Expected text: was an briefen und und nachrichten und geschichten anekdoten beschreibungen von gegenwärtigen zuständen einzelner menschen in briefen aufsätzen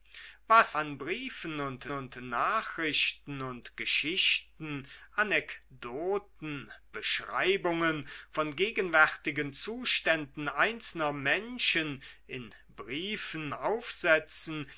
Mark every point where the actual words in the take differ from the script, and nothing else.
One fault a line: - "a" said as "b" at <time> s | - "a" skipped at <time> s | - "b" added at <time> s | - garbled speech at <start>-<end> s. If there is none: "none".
none